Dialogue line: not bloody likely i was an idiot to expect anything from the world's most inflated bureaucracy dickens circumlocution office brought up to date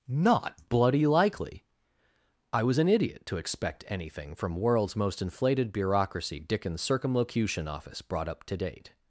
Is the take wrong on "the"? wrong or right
wrong